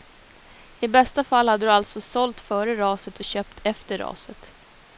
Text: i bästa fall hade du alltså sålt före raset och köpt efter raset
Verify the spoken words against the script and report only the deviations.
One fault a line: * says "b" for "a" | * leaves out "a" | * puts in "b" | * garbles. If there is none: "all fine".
all fine